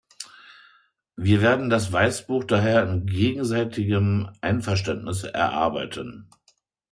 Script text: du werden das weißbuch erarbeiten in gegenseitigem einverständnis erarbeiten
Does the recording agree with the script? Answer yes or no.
no